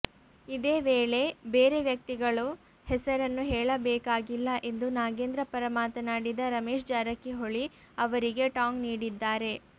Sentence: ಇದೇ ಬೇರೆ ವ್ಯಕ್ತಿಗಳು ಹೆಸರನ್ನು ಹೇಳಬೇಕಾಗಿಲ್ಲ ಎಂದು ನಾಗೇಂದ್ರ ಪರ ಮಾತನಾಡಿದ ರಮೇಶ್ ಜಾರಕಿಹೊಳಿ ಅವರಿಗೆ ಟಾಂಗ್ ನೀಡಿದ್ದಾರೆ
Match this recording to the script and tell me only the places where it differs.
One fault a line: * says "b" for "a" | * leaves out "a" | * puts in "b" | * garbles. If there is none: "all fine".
* puts in "ವೇಳೆ"